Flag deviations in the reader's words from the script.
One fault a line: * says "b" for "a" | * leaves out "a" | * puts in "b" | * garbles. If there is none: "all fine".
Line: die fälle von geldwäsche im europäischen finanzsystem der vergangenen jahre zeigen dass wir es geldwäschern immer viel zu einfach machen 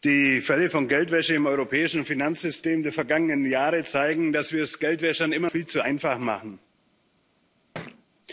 all fine